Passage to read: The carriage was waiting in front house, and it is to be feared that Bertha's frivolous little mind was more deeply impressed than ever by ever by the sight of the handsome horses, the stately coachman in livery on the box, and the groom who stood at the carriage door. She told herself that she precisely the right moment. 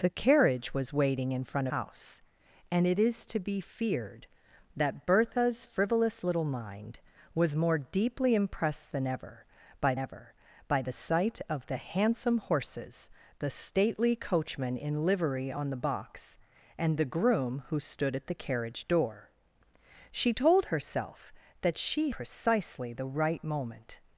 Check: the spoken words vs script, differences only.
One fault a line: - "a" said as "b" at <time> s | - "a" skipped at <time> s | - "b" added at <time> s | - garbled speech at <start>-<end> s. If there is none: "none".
none